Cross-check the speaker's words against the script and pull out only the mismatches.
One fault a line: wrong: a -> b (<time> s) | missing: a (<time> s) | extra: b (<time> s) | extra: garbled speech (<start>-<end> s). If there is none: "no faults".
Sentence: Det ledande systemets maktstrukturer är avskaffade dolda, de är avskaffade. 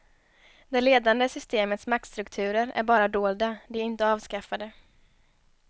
wrong: avskaffade -> bara (2.8 s)
extra: inte (3.8 s)